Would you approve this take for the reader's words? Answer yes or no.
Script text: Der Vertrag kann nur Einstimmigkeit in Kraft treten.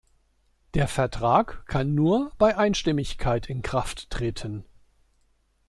no